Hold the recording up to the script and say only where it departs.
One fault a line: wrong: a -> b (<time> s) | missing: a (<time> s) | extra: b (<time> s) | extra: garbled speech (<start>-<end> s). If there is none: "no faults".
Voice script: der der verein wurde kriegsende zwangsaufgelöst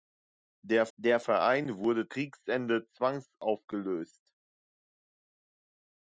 no faults